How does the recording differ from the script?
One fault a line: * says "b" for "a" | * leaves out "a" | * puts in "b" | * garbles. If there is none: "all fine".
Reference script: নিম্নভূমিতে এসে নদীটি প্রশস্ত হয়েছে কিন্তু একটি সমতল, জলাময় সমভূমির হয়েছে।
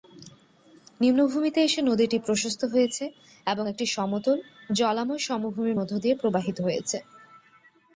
* says "এবং" for "কিন্তু"
* puts in "মধ্য দিয়ে প্রবাহিত"